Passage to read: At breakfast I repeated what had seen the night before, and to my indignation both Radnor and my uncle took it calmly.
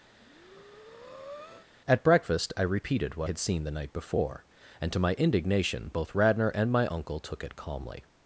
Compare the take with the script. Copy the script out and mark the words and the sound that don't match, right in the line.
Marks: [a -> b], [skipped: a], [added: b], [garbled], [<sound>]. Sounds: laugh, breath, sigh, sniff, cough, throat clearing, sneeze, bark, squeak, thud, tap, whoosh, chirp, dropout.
[breath] At breakfast I repeated what had seen the night before, and to my indignation both Radnor and my uncle took it calmly.